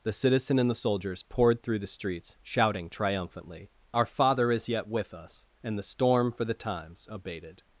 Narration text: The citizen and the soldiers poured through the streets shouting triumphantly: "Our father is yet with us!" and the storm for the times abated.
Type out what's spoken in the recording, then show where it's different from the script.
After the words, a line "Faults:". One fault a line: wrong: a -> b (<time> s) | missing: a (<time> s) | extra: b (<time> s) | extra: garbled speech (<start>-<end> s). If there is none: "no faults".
The citizen and the soldiers poured through the streets shouting triumphantly: "Our father is yet with us!" and the storm for the times abated.
Faults:
no faults